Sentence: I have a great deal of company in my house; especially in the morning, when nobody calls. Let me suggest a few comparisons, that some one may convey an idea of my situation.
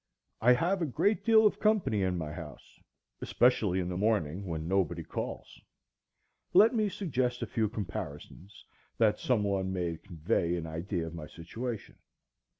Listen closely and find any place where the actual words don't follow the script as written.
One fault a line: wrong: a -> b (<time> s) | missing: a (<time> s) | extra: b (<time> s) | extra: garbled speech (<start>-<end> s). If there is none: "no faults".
no faults